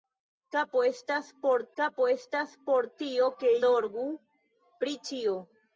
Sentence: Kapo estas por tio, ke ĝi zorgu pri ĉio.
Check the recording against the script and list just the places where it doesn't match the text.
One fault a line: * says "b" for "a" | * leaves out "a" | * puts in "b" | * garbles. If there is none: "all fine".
* puts in "kapo estas por"
* leaves out "ĝi"